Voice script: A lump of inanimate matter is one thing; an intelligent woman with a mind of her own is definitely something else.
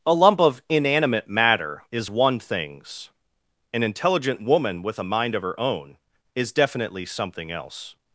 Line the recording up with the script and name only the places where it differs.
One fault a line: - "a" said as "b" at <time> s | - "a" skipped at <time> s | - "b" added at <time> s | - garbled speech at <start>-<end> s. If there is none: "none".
- "thing" said as "things" at 2.4 s